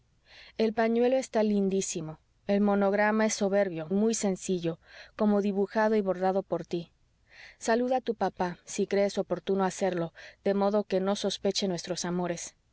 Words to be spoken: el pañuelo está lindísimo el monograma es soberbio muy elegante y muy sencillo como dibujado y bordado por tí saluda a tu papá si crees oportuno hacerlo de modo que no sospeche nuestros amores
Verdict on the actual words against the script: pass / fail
fail